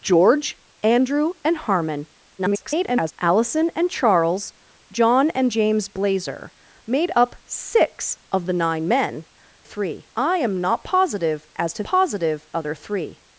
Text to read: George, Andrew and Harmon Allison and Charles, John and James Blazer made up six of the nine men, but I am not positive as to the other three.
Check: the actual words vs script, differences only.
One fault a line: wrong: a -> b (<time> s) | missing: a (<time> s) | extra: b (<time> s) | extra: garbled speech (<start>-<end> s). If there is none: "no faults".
extra: garbled speech (2.4-3.1 s)
wrong: but -> three (9.6 s)
wrong: the -> positive (11.8 s)